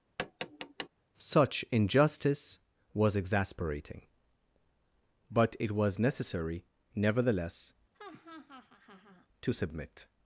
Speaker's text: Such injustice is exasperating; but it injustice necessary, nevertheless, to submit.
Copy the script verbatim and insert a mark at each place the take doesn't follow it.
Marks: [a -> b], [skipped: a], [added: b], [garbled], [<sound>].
[tap] Such injustice [is -> was] exasperating; but it [injustice -> was] necessary, nevertheless, [laugh] to submit.